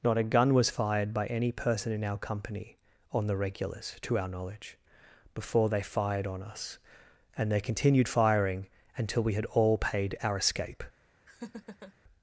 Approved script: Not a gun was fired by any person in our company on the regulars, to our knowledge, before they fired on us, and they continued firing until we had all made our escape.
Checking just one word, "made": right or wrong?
wrong